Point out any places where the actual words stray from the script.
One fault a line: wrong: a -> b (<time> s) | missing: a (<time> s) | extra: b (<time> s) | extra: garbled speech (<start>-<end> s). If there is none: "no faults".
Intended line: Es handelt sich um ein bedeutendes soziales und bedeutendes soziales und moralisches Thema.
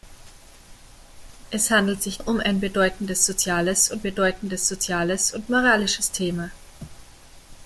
no faults